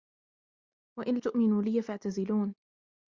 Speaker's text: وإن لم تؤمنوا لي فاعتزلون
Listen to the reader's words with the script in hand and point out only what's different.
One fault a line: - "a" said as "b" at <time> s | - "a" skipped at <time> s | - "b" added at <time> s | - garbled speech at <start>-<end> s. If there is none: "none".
- "لم" skipped at 1.2 s